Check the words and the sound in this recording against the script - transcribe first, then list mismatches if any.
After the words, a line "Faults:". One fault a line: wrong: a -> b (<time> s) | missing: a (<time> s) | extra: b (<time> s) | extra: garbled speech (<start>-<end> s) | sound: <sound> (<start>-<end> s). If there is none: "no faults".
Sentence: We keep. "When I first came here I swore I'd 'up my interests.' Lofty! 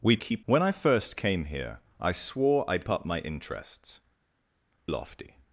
We keep. "When I first came here I swore I'd 'up my interests.' Lofty!
Faults:
no faults